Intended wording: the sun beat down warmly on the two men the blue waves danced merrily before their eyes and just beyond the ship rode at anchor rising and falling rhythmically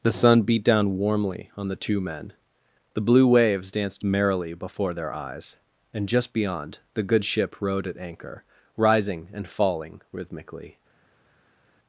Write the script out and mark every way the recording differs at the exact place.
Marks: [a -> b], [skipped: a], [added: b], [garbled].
the sun beat down warmly on the two men the blue waves danced merrily before their eyes and just beyond the [added: good] ship rode at anchor rising and falling rhythmically